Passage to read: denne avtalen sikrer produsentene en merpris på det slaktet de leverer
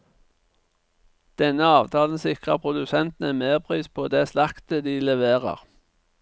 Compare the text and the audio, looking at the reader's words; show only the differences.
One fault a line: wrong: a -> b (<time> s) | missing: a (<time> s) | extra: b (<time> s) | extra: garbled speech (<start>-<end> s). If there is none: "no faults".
no faults